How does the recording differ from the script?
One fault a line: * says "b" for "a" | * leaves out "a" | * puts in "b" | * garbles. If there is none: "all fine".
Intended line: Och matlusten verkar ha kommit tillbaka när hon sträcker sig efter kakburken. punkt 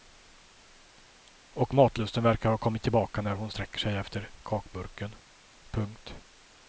all fine